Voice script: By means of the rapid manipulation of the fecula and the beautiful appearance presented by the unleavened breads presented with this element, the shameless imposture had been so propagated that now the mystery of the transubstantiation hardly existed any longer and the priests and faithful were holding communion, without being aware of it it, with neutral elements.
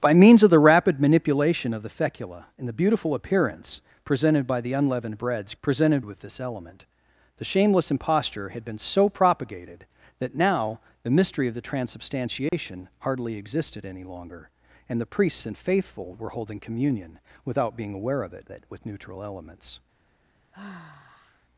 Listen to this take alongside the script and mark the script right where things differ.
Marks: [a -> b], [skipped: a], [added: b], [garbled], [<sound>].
By means of the rapid manipulation of the fecula and the beautiful appearance presented by the unleavened breads presented with this element, the shameless imposture had been so propagated that now the mystery of the transubstantiation [dropout] hardly existed any longer and the priests and faithful were holding communion, without being aware of it it, with neutral elements. [sigh]